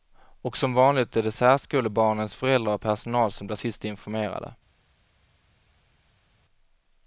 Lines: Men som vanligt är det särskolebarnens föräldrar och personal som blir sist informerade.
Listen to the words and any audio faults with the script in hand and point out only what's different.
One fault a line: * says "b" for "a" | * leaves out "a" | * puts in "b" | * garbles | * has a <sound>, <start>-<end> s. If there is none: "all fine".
* says "Och" for "Men"